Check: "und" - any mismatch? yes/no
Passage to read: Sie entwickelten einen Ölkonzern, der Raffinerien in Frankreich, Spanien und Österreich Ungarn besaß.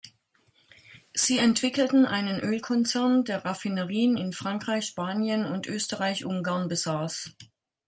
no